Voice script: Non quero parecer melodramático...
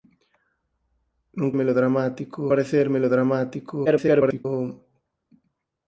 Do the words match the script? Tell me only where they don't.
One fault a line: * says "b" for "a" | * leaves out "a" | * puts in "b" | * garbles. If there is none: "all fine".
* says "melodramático" for "quero"
* garbles